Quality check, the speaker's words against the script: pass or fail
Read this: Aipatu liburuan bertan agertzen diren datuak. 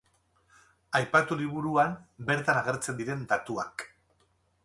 pass